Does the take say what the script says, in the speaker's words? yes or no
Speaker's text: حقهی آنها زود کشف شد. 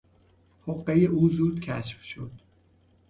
no